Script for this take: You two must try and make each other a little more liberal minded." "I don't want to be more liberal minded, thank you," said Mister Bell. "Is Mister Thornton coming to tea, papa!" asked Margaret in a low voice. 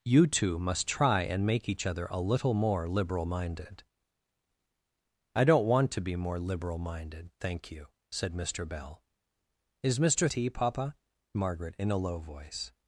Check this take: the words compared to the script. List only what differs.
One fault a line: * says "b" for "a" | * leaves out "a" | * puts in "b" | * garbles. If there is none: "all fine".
* leaves out "Thornton coming to"
* leaves out "asked"